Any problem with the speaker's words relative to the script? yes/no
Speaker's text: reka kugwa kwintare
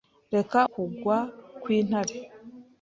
no